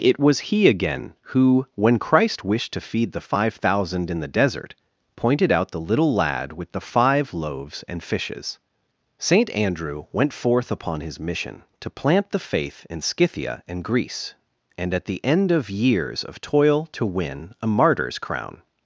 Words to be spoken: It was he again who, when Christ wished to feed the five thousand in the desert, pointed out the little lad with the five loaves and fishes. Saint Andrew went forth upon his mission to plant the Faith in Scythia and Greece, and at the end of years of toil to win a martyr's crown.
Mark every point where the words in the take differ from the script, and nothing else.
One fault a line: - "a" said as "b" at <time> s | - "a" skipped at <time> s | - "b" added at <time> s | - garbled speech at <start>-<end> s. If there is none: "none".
none